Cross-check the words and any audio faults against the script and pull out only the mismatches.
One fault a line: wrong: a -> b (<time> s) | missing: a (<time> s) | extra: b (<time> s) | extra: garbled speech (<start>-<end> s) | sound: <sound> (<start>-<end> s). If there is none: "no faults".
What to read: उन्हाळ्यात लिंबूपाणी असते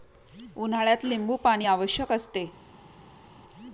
extra: आवश्यक (1.6 s)